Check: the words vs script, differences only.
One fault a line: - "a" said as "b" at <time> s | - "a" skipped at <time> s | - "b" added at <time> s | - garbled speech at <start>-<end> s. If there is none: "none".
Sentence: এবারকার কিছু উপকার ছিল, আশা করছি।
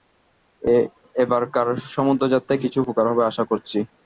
- "সমুদ্রযাত্রায়" added at 1.9 s
- "ছিল" said as "হবে" at 3.1 s